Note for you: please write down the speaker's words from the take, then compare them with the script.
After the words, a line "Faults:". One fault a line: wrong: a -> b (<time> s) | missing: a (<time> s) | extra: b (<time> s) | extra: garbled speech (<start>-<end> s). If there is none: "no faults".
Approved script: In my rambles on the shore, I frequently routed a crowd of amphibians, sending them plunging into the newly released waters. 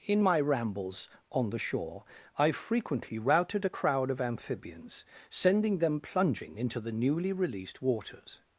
In my rambles on the shore, I frequently routed a crowd of amphibians, sending them plunging into the newly released waters.
Faults:
no faults